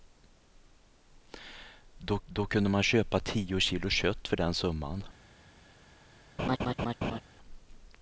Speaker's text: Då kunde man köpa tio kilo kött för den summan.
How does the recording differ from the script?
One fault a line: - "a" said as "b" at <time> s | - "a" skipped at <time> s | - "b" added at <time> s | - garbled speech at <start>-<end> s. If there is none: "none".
- "då" added at 2.2 s